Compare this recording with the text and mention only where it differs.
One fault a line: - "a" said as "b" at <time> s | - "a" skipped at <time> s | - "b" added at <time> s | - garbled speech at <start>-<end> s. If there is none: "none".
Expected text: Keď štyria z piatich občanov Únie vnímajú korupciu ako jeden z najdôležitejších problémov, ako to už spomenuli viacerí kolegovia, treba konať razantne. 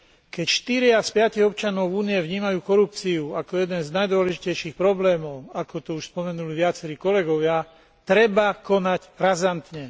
none